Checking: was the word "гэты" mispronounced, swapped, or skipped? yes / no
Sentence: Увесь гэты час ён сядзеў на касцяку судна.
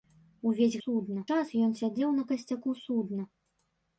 yes